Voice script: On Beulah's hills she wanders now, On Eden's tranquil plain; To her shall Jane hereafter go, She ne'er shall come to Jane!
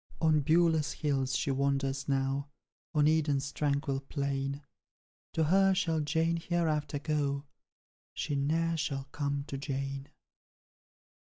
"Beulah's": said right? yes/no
yes